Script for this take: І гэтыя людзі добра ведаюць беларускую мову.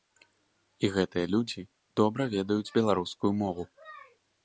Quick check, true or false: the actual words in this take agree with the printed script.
true